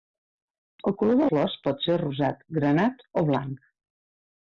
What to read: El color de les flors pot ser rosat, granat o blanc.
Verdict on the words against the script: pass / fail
fail